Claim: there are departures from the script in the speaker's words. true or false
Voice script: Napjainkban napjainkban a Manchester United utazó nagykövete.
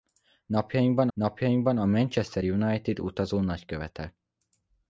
false